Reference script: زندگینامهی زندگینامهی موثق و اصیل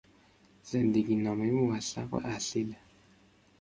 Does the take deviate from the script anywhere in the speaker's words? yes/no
yes